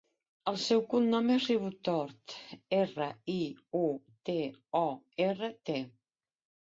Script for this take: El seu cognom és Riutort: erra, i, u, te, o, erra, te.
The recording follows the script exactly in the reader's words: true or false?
true